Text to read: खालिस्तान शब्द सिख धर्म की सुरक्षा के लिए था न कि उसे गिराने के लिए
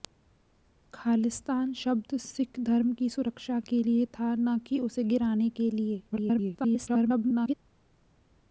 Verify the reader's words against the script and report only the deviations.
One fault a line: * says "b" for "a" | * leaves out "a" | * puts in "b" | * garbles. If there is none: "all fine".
* garbles